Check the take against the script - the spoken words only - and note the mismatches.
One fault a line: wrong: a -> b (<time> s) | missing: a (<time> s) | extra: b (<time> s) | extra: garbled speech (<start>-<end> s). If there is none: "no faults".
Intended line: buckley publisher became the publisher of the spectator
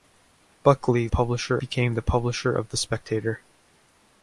no faults